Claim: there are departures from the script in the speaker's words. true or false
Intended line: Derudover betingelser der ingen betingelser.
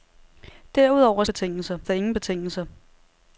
false